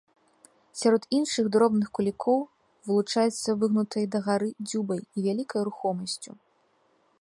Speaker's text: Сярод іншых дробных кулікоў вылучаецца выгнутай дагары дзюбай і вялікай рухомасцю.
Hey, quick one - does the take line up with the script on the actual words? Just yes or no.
yes